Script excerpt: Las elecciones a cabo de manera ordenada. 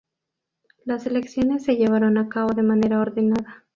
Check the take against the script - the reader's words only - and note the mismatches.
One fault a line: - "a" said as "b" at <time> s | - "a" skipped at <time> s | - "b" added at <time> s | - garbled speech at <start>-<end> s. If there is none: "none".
- "se llevaron" added at 1.6 s